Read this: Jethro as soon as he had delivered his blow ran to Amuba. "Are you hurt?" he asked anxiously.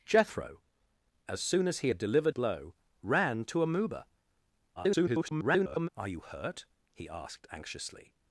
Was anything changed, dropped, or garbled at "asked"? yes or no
no